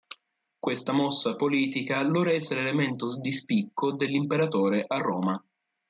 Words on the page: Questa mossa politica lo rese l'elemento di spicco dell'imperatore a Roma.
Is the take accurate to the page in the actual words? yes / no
yes